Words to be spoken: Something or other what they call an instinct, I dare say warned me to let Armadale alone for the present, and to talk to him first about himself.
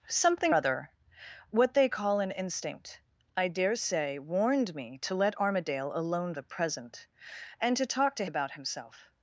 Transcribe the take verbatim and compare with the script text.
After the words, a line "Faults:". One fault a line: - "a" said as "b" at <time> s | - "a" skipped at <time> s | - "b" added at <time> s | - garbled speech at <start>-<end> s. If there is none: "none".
Something other what they call an instinct, I dare say warned me to let Armadale alone the present, and to talk to about himself.
Faults:
- "or" skipped at 0.6 s
- "for" skipped at 6.3 s
- "him first" skipped at 8.3 s